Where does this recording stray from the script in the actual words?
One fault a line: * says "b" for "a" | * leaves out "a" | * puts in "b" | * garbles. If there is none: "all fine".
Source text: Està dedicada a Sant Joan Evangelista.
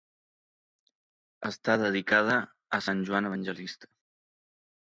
all fine